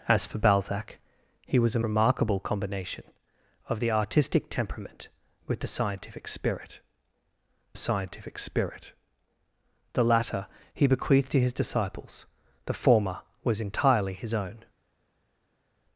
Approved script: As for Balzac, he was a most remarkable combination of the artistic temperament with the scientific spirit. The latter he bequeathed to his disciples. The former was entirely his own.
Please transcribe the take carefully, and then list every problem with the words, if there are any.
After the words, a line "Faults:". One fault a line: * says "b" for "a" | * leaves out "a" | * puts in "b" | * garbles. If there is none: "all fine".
As for Balzac, he was a remarkable combination of the artistic temperament with the scientific spirit scientific spirit. The latter he bequeathed to his disciples. The former was entirely his own.
Faults:
* leaves out "most"
* puts in "scientific spirit"